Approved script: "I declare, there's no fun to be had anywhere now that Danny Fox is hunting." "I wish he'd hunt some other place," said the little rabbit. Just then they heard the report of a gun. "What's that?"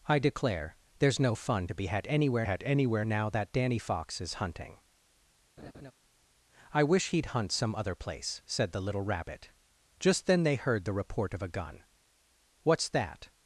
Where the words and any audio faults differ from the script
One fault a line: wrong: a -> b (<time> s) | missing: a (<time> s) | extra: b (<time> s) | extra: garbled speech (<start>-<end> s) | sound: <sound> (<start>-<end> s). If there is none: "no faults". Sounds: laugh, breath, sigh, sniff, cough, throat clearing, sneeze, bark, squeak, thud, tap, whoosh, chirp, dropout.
extra: had anywhere (2.4 s)
sound: laugh (5.6-5.9 s)